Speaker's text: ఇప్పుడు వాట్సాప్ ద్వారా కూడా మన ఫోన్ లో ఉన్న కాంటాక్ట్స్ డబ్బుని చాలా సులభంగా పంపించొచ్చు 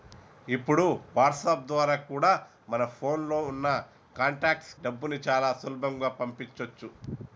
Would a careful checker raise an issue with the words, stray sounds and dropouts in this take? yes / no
no